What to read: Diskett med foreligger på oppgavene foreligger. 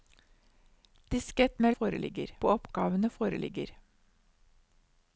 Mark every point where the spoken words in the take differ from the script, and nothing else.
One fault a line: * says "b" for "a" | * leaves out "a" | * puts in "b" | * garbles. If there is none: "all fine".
all fine